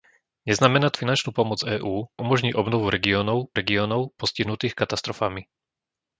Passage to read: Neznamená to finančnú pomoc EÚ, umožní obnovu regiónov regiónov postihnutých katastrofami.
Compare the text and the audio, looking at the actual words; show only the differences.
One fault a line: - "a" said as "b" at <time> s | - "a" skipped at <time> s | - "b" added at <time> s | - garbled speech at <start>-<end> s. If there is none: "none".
none